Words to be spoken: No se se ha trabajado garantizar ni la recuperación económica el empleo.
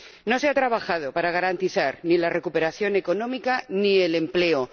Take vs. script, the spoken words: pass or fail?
fail